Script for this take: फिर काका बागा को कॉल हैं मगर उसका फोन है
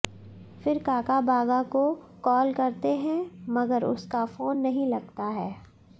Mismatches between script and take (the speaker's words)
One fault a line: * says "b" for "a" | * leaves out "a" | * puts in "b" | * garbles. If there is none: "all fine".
* puts in "करते"
* puts in "नहीं लगता"